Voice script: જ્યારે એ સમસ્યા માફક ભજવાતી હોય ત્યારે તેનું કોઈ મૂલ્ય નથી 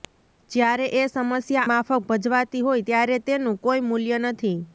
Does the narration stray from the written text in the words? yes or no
no